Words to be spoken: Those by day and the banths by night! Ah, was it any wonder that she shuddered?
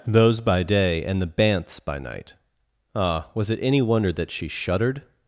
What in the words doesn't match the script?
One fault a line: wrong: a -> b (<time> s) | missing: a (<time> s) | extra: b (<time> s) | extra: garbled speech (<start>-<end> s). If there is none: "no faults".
no faults